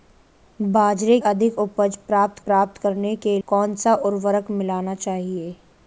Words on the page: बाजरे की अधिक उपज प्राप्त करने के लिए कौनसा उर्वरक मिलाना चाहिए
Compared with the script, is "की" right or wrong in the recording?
wrong